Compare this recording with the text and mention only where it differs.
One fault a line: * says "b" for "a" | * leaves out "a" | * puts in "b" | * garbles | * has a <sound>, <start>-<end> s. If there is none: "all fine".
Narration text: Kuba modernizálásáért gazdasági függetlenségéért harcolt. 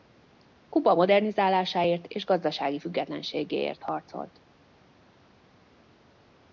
* puts in "és"